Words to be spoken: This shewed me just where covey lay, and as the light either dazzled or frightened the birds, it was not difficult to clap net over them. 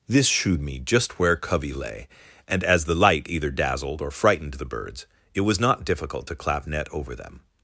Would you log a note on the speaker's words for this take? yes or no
no